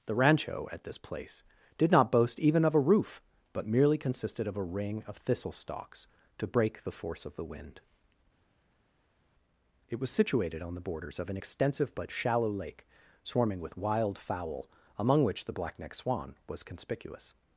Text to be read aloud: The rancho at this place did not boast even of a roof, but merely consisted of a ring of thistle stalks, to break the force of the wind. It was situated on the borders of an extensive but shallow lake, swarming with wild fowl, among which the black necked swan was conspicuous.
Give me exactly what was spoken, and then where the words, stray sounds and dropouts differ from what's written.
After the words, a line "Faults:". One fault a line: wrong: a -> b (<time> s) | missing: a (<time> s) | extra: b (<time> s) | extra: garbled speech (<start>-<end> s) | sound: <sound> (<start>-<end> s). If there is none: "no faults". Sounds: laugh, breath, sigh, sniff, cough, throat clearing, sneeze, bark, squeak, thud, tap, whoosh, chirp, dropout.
The rancho at this place did not boast even of a roof, but merely consisted of a ring of thistle stalks, to break the force of the wind. It was situated on the borders of an extensive but shallow lake, swarming with wild fowl, among which the black necked swan was conspicuous.
Faults:
no faults